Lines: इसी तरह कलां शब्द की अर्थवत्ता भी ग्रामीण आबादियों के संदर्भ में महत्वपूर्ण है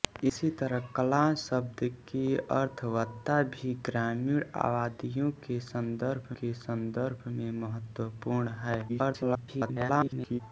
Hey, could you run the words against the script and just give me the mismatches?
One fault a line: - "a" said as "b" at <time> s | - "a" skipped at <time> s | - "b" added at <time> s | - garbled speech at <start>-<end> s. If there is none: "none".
- "के संदर्भ" added at 6.4 s
- garbled speech at 8.9-10.4 s